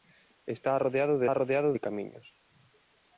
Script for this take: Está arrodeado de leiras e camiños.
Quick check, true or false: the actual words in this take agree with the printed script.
false